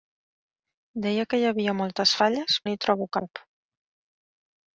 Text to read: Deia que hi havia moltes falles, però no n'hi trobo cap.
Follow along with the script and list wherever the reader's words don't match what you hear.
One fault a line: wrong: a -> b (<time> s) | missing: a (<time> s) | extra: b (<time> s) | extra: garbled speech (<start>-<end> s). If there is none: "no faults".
missing: però no (2.6 s)